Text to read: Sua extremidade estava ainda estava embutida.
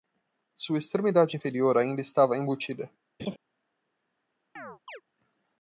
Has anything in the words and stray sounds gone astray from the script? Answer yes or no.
yes